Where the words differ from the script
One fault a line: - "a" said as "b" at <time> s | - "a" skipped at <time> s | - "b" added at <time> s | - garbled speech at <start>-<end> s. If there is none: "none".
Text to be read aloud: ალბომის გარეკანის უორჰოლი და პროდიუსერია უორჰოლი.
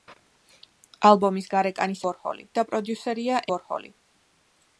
none